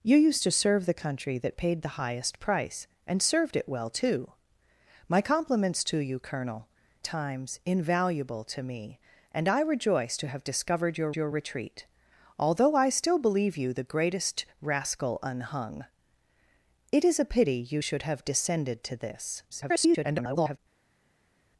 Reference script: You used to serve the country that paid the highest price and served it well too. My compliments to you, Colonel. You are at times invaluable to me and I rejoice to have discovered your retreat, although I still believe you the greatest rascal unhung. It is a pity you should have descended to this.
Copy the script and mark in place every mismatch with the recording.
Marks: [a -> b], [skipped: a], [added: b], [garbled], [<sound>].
You used to serve the country that paid the highest price and served it well too. My compliments to you, Colonel. [skipped: You are at] times invaluable to me and I rejoice to have discovered your [added: your] retreat, although I still believe you the greatest rascal unhung. It is a pity you should have descended to this. [garbled]